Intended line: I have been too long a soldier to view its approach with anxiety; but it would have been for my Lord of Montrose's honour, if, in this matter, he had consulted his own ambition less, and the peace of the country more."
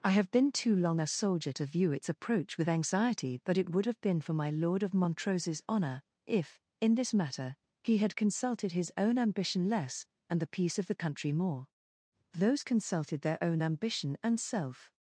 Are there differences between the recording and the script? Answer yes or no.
yes